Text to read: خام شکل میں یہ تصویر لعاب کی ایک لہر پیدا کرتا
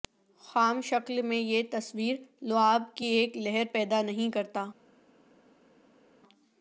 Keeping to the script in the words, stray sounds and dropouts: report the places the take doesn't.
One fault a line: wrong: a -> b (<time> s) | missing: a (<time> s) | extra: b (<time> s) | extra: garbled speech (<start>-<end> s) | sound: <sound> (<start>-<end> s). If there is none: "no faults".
extra: نہیں (4.0 s)